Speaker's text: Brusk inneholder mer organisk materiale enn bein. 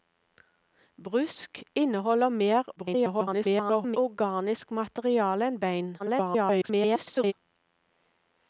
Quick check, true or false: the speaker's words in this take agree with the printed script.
false